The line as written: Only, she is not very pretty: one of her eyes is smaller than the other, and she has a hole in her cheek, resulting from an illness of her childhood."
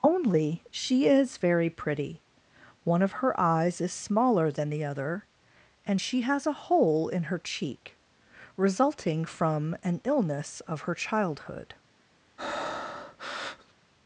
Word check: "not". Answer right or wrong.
wrong